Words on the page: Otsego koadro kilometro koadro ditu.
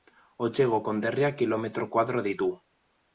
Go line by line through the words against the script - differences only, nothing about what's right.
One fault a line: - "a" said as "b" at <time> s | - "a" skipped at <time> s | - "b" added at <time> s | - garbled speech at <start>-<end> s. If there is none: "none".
- "koadro" said as "konderriak" at 0.9 s